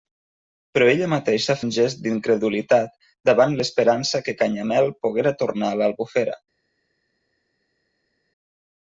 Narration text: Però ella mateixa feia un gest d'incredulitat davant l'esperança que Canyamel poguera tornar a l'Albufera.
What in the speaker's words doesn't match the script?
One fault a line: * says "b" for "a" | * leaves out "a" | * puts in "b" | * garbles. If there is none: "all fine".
* leaves out "feia"